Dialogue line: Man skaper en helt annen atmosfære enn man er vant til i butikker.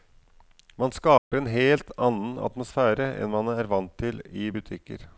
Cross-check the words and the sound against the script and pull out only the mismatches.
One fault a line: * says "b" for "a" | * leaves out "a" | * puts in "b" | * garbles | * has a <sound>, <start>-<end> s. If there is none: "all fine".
* has a dropout, 1.2-1.3 s